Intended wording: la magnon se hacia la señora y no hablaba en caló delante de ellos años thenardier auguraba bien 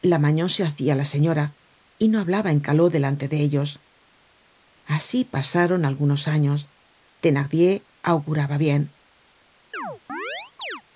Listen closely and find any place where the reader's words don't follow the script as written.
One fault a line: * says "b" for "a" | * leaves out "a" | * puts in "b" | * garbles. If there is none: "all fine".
* puts in "asi pasaron algunos"